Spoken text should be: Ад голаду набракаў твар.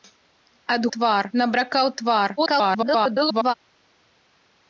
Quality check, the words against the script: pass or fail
fail